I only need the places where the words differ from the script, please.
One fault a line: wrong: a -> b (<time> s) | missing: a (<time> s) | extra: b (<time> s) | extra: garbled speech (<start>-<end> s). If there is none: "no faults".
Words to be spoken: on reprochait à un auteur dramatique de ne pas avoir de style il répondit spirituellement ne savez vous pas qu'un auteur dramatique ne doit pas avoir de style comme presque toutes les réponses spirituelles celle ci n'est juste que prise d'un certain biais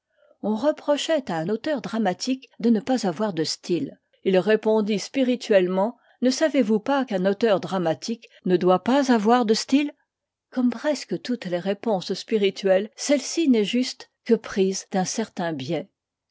no faults